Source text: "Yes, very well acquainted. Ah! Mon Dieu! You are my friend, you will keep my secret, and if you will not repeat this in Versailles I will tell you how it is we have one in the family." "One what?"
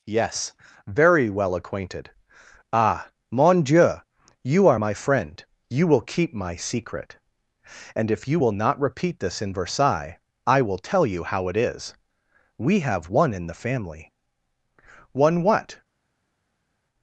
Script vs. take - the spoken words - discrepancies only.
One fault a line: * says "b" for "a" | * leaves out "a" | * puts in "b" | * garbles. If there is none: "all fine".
all fine